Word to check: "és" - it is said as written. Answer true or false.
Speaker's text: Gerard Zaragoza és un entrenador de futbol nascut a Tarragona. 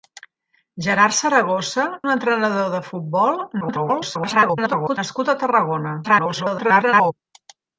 false